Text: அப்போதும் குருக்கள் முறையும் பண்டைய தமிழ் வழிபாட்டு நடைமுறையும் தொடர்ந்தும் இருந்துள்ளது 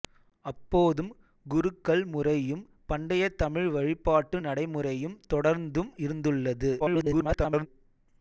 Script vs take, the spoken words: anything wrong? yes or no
yes